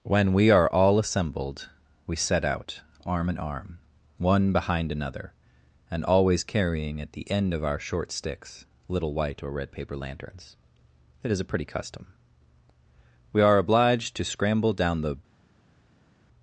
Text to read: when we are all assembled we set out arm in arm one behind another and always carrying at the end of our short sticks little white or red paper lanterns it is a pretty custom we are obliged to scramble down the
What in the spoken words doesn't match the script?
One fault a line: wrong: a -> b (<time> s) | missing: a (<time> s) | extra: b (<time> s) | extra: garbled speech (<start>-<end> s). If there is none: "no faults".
no faults